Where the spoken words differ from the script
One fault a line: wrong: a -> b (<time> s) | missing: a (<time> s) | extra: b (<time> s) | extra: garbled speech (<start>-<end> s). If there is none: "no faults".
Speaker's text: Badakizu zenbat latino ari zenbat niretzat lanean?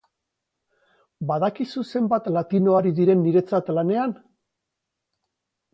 wrong: zenbat -> diren (3.0 s)